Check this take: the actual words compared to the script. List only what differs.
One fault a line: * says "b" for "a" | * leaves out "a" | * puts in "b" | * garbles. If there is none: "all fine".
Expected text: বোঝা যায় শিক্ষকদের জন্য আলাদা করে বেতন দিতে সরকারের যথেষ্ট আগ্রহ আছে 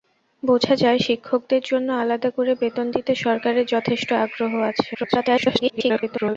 * garbles